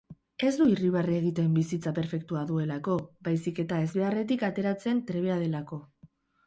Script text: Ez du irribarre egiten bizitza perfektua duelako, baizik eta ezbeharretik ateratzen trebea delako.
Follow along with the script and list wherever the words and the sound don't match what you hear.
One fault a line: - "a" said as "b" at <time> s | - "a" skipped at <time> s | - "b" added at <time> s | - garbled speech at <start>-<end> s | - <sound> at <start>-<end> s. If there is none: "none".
none